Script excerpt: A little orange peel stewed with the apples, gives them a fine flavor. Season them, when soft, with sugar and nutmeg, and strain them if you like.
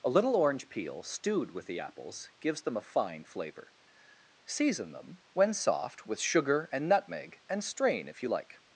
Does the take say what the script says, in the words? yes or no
no